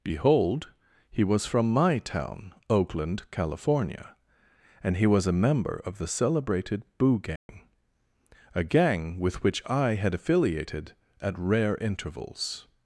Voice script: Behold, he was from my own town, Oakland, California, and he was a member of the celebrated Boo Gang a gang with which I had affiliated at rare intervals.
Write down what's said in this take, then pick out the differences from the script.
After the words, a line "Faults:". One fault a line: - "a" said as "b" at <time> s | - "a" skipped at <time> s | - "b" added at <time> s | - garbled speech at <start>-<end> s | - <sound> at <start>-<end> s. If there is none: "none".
Behold, he was from my town, Oakland, California, and he was a member of the celebrated Boo Gang a gang with which I had affiliated at rare intervals.
Faults:
- "own" skipped at 2.0 s
- dropout at 7.4-7.5 s